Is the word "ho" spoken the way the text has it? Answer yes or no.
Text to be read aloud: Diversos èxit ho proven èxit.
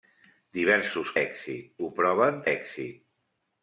yes